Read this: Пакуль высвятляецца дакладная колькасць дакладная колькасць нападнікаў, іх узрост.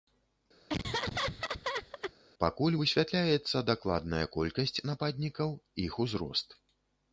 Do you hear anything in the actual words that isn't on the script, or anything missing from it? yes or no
yes